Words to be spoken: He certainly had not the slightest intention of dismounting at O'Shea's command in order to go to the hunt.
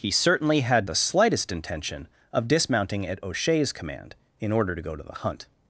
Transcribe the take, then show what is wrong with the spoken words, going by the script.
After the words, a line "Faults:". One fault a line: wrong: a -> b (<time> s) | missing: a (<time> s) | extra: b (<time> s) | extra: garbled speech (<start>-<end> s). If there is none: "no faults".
He certainly had the slightest intention of dismounting at O'Shea's command in order to go to the hunt.
Faults:
missing: not (0.9 s)